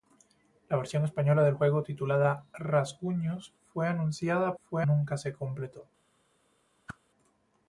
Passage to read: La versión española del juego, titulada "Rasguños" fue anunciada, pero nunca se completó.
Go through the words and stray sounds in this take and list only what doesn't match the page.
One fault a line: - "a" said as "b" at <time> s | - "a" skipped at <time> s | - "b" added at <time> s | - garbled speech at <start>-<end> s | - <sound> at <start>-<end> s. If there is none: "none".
- "pero" said as "fue" at 4.6 s
- whoosh at 6.9-7.0 s